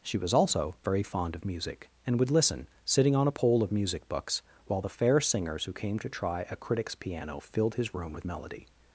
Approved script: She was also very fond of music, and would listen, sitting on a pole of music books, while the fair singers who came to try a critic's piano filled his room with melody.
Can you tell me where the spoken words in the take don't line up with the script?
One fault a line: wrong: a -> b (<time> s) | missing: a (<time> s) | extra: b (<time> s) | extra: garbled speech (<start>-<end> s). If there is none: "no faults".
no faults